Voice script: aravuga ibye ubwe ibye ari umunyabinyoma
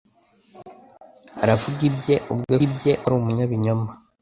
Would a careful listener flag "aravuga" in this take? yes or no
no